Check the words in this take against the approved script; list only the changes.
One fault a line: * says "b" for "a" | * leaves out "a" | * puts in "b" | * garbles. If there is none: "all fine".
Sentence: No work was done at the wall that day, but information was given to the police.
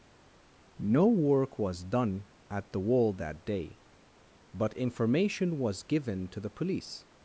all fine